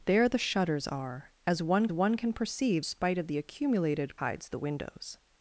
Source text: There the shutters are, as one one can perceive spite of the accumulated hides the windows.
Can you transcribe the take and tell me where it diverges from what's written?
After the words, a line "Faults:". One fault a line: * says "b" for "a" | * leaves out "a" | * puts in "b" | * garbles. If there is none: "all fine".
There the shutters are, as one one can perceive spite of the accumulated hides the windows.
Faults:
all fine